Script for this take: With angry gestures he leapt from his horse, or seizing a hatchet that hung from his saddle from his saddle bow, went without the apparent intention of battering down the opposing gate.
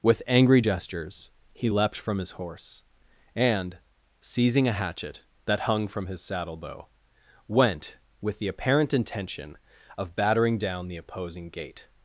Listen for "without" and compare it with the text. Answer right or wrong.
wrong